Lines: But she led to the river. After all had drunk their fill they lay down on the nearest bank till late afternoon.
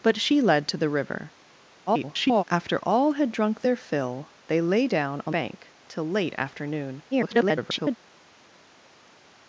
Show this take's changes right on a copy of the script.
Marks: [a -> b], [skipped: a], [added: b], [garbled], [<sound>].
But she led to the river. [garbled] After all had drunk their fill they lay down on [skipped: the nearest] bank till late afternoon. [garbled]